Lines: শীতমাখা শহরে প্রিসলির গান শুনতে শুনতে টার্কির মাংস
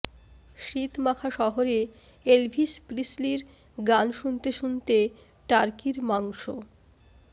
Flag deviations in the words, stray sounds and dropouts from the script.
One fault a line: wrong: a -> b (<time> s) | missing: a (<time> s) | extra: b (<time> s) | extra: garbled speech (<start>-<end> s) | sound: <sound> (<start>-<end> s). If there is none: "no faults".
extra: এলভিস (2.3 s)